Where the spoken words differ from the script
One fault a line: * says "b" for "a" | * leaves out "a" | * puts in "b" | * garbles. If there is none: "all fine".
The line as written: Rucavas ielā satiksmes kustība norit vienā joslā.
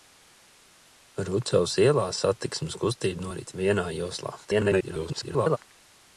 * garbles